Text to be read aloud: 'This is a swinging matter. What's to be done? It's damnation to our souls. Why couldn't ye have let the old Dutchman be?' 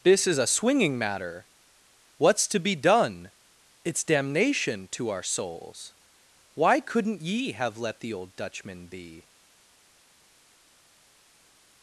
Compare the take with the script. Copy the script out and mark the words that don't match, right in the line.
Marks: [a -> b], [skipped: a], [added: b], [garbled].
'This is a swinging matter. What's to be done? It's damnation to our souls. Why couldn't ye have let the old Dutchman be?'